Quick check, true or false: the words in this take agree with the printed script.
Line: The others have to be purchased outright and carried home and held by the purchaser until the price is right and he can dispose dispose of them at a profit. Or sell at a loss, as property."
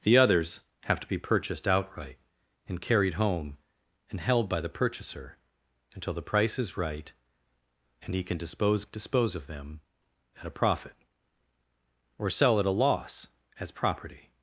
true